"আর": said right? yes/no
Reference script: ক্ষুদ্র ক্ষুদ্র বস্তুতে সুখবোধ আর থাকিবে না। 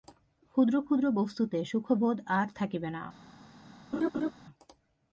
yes